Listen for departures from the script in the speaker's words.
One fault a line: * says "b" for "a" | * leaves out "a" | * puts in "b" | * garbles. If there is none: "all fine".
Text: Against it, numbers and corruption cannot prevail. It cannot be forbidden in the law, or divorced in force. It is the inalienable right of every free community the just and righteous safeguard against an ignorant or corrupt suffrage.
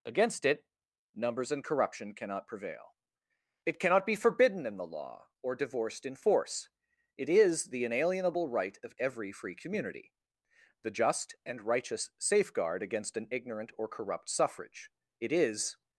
* puts in "It is"